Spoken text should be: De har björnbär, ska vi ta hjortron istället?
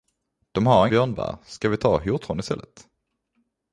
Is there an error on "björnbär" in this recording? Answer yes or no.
no